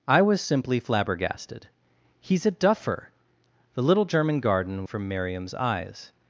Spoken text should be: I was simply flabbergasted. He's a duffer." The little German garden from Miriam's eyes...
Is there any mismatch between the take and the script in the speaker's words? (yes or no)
no